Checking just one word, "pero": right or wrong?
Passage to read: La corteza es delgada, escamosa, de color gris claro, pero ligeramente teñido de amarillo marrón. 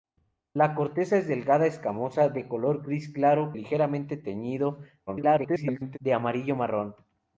wrong